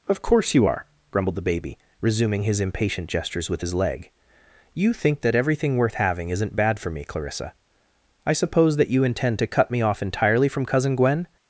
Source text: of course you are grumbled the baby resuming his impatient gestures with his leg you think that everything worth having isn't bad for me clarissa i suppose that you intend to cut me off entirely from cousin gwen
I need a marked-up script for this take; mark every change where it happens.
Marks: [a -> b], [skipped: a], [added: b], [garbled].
of course you are grumbled the baby resuming his impatient gestures with his leg you think that everything worth having isn't bad for me clarissa i suppose that you intend to cut me off entirely from cousin gwen